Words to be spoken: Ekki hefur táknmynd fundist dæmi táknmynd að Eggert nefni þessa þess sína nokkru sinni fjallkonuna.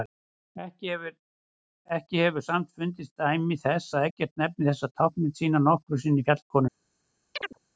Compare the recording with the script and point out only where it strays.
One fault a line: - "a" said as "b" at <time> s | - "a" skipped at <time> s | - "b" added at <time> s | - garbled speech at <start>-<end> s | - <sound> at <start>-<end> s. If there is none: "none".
- "táknmynd" said as "samt" at 2.5 s
- "táknmynd" said as "þess" at 3.6 s
- "þess" said as "táknmynd" at 5.0 s
- chirp at 7.3-7.6 s